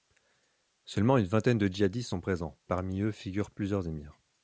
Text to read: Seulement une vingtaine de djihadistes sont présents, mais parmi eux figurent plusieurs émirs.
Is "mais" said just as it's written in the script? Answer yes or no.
no